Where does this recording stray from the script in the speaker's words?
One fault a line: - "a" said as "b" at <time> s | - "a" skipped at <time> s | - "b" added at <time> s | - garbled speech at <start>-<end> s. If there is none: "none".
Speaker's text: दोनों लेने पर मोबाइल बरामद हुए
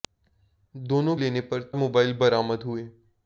none